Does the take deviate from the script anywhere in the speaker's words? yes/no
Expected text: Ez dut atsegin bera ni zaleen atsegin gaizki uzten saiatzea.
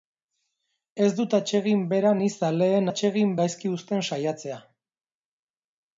no